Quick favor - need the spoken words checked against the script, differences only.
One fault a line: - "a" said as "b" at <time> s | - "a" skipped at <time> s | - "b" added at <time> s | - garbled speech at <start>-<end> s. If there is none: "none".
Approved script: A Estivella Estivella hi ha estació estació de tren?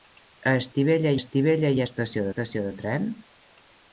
none